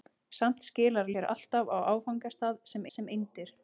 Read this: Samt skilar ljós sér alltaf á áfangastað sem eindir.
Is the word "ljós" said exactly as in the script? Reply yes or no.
no